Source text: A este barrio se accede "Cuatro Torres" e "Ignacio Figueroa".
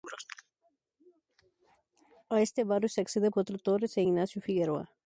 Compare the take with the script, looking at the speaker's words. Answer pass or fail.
pass